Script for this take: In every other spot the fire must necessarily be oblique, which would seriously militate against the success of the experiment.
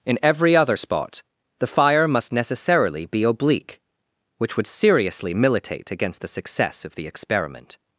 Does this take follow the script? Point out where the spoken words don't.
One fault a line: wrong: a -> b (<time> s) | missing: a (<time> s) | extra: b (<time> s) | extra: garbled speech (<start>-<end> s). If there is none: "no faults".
no faults